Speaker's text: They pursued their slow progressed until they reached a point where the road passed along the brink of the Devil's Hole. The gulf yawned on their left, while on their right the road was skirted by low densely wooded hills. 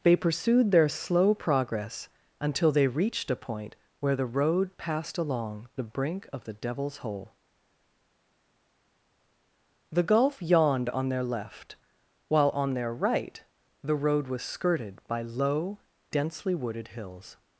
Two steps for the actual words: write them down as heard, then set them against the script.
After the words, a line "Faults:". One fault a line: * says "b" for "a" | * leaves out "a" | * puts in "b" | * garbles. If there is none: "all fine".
They pursued their slow progress until they reached a point where the road passed along the brink of the Devil's Hole. The gulf yawned on their left, while on their right the road was skirted by low densely wooded hills.
Faults:
* says "progress" for "progressed"